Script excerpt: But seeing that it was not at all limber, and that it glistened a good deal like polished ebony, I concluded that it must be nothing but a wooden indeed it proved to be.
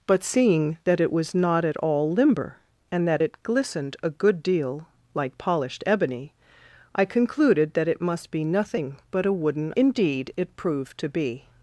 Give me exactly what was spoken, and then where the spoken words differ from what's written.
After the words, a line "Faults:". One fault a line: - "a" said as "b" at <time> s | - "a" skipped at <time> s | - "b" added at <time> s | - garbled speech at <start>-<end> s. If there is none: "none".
But seeing that it was not at all limber, and that it glistened a good deal like polished ebony, I concluded that it must be nothing but a wooden indeed it proved to be.
Faults:
none